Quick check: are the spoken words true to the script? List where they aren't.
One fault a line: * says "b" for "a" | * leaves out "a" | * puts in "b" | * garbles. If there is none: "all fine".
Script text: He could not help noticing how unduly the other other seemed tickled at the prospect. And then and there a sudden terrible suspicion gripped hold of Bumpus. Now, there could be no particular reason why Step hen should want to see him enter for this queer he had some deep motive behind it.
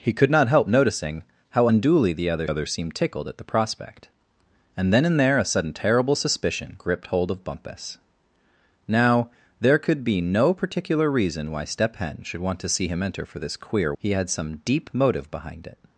all fine